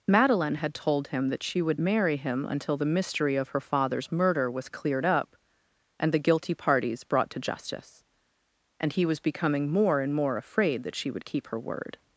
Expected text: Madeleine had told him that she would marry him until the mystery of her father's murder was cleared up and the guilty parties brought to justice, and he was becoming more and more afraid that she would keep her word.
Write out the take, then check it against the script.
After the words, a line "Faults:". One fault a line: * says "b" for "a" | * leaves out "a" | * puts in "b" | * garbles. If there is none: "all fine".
Madeleine had told him that she would marry him until the mystery of her father's murder was cleared up and the guilty parties brought to justice, and he was becoming more and more afraid that she would keep her word.
Faults:
all fine